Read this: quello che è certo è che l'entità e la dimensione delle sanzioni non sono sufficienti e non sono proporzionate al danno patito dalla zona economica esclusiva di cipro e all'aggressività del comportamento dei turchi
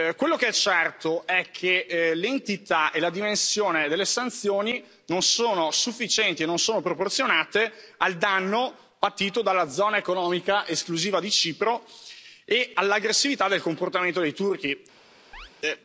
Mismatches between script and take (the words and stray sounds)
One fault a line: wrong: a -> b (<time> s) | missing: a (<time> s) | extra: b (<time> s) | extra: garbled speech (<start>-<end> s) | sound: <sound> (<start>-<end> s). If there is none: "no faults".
sound: chirp (15.3-15.5 s)